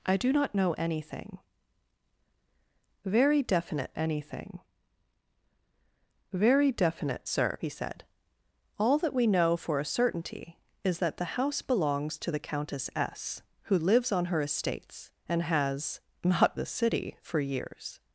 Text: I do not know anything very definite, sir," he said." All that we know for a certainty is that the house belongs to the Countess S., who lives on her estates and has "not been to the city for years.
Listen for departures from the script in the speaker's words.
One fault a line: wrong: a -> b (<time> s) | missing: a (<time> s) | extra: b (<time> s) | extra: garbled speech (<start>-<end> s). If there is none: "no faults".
extra: anything very definite (3.9 s)
missing: been to (16.6 s)